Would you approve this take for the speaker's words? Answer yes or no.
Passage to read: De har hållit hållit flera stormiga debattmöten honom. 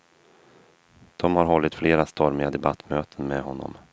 no